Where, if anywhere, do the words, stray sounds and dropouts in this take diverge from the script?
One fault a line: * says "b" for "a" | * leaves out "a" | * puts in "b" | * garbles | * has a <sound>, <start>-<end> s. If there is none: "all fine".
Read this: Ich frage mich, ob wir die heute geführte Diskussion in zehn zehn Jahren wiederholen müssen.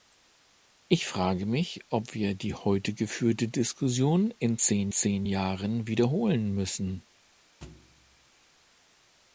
* has a thud, 7.6-8.3 s